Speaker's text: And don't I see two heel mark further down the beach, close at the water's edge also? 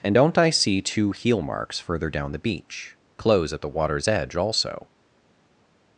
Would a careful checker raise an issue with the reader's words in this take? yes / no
yes